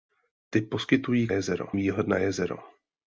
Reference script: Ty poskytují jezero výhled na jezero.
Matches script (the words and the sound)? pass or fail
pass